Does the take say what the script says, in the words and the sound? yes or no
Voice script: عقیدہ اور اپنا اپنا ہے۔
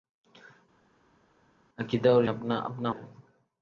yes